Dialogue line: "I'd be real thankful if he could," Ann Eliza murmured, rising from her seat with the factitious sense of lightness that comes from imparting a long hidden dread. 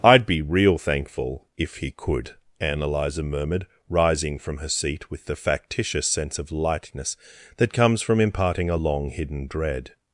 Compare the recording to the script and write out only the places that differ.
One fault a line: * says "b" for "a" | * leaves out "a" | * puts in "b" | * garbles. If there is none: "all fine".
all fine